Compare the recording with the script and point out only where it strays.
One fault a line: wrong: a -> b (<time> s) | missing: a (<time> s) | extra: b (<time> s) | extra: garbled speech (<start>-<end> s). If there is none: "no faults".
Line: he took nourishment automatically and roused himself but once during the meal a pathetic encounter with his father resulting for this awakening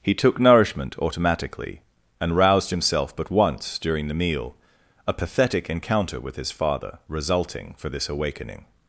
no faults